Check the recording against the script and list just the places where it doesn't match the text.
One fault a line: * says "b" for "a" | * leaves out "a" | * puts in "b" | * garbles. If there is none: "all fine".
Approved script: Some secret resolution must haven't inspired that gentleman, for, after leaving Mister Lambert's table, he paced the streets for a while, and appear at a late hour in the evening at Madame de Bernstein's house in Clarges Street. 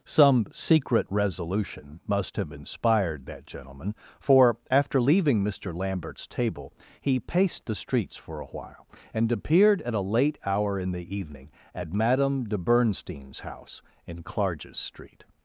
* says "have" for "haven't"
* says "appeared" for "appear"